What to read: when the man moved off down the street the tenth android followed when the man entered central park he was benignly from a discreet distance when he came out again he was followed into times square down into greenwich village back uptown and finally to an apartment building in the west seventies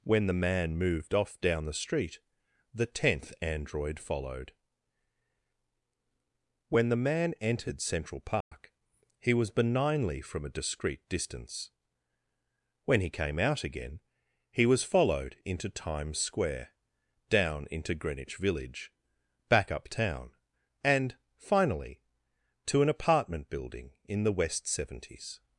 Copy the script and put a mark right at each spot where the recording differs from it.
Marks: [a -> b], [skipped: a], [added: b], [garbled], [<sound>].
when the man moved off down the street the tenth android followed when the man entered central park [dropout] he was benignly from a discreet distance when he came out again he was followed into times square down into greenwich village back uptown and finally to an apartment building in the west seventies